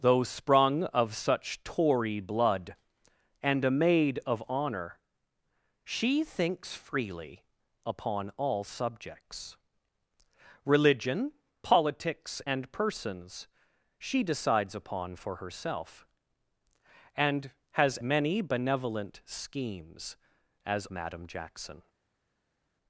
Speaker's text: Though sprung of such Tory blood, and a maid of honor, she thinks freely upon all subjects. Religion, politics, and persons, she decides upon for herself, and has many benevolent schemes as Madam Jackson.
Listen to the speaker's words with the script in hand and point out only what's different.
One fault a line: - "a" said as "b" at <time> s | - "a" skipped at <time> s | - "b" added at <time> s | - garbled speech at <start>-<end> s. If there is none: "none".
none